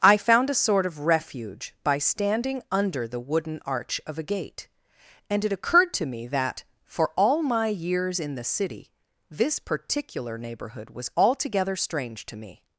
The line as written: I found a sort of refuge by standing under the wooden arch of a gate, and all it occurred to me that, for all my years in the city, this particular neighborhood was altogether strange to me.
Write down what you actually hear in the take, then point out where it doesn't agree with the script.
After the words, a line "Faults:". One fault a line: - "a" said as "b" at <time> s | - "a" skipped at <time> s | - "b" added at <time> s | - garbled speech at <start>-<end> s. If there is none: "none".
I found a sort of refuge by standing under the wooden arch of a gate, and it occurred to me that, for all my years in the city, this particular neighborhood was altogether strange to me.
Faults:
- "all" skipped at 5.5 s